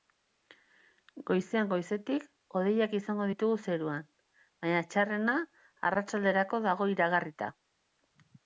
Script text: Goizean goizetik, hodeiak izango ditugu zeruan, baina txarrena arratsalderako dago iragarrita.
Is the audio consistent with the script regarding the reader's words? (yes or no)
yes